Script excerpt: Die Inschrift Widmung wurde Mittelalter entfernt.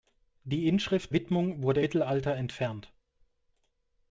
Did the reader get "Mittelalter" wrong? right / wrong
right